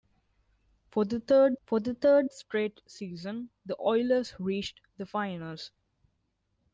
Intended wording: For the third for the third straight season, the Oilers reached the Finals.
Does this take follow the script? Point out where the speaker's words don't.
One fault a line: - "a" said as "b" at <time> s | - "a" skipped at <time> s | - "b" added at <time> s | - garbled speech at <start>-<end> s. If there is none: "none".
none